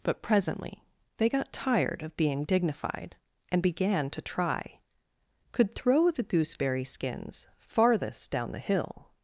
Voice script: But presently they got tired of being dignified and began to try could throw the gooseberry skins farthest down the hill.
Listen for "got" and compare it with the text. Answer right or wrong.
right